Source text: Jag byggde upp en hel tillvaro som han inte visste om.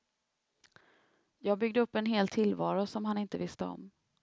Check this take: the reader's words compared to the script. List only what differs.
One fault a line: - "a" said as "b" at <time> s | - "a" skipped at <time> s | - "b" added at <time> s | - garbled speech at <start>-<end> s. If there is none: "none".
none